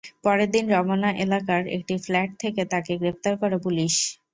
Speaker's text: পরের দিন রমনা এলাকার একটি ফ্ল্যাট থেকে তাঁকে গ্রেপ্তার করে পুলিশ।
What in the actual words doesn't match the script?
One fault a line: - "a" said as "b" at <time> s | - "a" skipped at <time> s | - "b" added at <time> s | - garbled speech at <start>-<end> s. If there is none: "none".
none